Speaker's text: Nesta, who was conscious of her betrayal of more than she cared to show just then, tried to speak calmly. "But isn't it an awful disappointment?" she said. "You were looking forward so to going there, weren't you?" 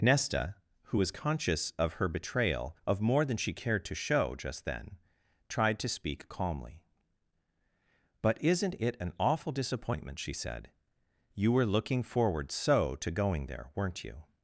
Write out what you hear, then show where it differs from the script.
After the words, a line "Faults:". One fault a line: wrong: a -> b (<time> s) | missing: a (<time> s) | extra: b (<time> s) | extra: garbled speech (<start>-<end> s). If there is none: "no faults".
Nesta, who was conscious of her betrayal of more than she cared to show just then, tried to speak calmly. "But isn't it an awful disappointment?" she said. "You were looking forward so to going there, weren't you?"
Faults:
no faults